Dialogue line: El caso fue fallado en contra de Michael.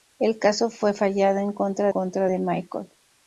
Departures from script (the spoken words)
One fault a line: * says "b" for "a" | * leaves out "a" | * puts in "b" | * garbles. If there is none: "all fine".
* puts in "contra"